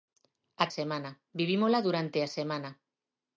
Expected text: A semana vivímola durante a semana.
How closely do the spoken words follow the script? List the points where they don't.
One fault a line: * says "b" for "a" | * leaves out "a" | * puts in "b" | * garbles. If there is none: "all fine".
all fine